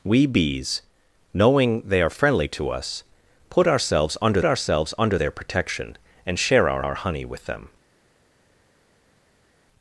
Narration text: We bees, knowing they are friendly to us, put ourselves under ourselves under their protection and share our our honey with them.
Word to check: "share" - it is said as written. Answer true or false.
true